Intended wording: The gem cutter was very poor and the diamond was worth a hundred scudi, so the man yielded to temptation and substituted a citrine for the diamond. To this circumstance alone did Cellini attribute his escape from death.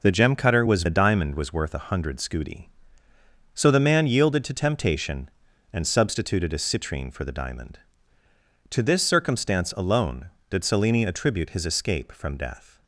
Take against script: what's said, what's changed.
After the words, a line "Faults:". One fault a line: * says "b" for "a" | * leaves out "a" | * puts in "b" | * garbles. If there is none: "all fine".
The gem cutter was the diamond was worth a hundred scudi, so the man yielded to temptation and substituted a citrine for the diamond. To this circumstance alone did Cellini attribute his escape from death.
Faults:
* leaves out "very poor and"